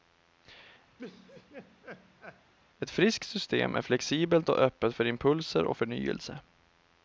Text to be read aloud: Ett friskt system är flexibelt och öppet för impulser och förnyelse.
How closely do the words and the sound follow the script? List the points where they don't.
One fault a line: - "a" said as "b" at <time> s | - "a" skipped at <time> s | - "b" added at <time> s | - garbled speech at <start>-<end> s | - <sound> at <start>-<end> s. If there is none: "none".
- laugh at 1.0-2.5 s